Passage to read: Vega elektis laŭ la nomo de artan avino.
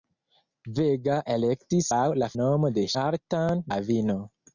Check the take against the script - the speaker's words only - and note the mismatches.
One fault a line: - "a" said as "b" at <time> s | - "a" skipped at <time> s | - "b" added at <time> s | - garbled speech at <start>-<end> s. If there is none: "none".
none